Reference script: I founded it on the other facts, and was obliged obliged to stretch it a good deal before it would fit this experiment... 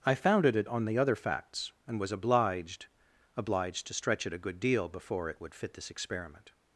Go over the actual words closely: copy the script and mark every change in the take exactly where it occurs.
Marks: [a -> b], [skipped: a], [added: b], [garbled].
I founded it on the other facts, and was obliged obliged to stretch it a good deal before it would fit this experiment...